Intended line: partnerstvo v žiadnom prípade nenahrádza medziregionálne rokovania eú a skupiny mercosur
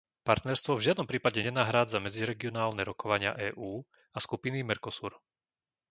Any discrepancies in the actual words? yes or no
no